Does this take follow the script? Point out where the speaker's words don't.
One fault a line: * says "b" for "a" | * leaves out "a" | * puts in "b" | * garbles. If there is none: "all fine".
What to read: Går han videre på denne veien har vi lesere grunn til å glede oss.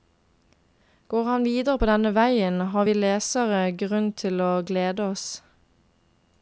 all fine